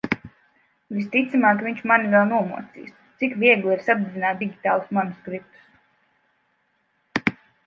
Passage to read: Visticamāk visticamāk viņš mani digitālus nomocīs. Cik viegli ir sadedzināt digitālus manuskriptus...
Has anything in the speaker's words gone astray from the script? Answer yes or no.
yes